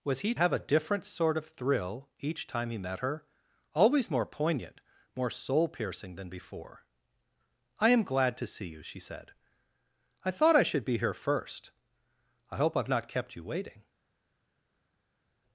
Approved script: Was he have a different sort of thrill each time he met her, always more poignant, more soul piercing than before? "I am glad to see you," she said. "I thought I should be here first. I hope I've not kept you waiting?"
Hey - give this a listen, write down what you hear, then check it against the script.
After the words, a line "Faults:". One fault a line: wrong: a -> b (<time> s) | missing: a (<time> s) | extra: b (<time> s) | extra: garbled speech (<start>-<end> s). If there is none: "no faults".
Was he have a different sort of thrill each time he met her, always more poignant, more soul piercing than before? "I am glad to see you," she said. "I thought I should be here first. I hope I've not kept you waiting?"
Faults:
no faults